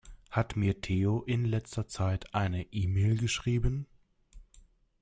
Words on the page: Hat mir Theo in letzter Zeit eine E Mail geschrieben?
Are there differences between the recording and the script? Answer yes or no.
no